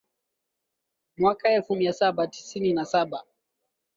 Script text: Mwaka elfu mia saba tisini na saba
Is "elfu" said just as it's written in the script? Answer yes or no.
yes